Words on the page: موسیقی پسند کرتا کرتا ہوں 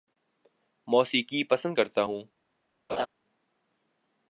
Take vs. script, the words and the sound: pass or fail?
fail